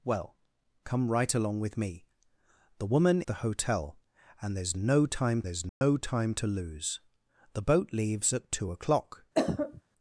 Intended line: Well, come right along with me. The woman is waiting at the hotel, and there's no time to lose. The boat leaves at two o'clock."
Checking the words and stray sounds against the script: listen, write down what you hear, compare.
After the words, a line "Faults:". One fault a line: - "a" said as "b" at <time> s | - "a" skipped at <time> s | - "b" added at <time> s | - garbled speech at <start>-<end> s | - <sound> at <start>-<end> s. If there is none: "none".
Well, come right along with me. The woman the hotel, and there's no time there's no time to lose. The boat leaves at two o'clock."
Faults:
- "is waiting at the hotel and" said as "the hotel and there's no time" at 3.3 s
- dropout at 5.7-5.8 s
- cough at 9.3-9.8 s